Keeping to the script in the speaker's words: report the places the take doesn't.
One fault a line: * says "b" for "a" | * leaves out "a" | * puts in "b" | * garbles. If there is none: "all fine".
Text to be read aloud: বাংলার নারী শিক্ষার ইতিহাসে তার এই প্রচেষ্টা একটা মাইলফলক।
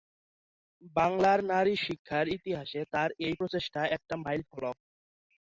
all fine